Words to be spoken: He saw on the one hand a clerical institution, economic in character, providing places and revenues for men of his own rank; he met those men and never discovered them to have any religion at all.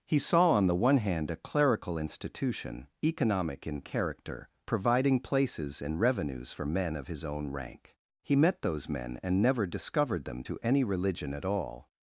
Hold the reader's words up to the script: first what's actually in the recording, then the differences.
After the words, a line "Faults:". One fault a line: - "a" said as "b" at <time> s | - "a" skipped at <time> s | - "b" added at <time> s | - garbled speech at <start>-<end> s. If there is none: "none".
He saw on the one hand a clerical institution, economic in character, providing places and revenues for men of his own rank; he met those men and never discovered them to any religion at all.
Faults:
- "have" skipped at 10.6 s